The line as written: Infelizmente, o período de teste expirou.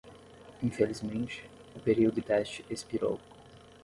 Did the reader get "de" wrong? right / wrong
wrong